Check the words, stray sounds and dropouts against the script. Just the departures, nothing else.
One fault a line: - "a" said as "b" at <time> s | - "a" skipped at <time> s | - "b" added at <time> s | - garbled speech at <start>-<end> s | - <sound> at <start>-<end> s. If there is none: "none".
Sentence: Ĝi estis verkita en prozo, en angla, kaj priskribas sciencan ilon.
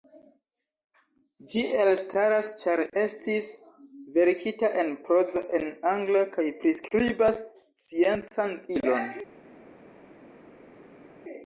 - "elstaras ĉar" added at 1.8 s